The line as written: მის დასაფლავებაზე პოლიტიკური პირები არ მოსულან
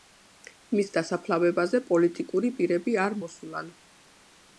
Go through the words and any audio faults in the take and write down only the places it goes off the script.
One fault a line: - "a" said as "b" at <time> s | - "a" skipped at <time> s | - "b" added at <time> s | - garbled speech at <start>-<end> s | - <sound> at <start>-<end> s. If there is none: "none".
none